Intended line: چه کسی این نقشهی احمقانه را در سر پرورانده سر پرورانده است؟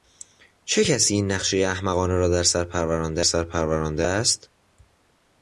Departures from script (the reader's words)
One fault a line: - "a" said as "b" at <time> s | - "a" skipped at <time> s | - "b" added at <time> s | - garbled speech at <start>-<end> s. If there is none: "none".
none